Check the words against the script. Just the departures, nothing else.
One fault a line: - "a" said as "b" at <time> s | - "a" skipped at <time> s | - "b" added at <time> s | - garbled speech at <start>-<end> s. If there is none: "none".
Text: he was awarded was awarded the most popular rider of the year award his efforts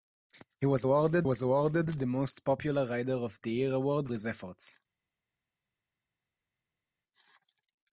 none